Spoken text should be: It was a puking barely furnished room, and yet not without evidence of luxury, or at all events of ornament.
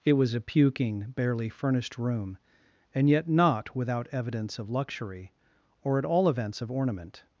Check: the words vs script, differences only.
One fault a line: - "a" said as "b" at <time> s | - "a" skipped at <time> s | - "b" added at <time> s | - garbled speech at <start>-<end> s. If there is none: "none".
none